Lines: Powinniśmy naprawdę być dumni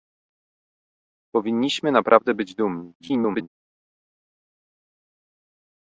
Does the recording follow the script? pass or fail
fail